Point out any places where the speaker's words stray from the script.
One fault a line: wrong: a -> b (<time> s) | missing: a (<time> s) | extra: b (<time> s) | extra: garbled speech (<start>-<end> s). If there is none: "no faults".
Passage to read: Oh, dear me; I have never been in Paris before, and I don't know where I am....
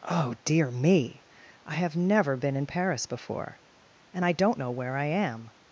no faults